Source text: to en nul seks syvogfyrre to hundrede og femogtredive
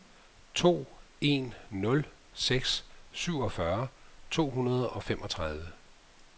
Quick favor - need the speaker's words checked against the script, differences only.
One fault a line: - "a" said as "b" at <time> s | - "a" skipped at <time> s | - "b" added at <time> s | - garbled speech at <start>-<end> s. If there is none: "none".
none